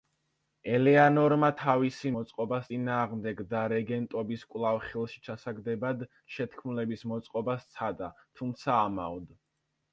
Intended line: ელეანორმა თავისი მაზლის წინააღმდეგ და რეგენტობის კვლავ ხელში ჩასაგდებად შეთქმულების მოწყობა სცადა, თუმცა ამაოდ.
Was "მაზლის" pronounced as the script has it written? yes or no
no